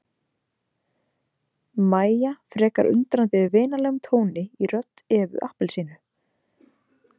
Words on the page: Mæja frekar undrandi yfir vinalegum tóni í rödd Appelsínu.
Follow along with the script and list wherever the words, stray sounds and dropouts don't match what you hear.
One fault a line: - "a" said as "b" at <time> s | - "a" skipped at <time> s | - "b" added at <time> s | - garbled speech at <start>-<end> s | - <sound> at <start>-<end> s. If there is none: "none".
- "Evu" added at 5.2 s